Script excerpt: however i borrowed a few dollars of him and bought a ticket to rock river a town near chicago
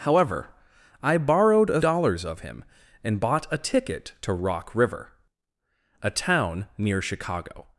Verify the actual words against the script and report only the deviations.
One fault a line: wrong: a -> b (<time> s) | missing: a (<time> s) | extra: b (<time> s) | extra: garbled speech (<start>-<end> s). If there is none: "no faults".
missing: few (1.8 s)